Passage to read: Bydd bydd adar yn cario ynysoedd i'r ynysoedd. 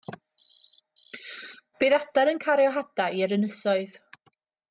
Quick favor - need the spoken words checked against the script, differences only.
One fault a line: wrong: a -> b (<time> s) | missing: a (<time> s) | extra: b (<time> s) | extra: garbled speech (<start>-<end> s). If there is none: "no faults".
missing: bydd (2.0 s)
wrong: ynysoedd -> hadau (2.8 s)